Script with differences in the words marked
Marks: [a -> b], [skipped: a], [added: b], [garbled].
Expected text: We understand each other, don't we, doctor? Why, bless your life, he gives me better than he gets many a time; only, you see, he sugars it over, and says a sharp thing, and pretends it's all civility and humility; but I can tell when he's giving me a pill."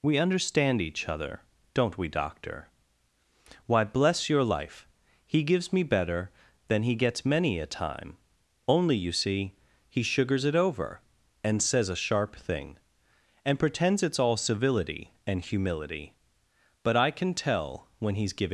We understand each other, don't we, doctor? Why, bless your life, he gives me better than he gets many a time; only, you see, he sugars it over, and says a sharp thing, and pretends it's all civility and humility; but I can tell when he's giving [skipped: me a pill."]